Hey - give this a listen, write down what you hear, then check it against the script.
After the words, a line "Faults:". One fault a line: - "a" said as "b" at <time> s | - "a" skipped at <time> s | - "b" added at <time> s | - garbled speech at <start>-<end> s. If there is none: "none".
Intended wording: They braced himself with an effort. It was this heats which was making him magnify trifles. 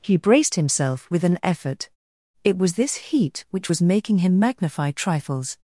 He braced himself with an effort. It was this heat which was making him magnify trifles.
Faults:
- "They" said as "He" at 0.0 s
- "heats" said as "heat" at 2.9 s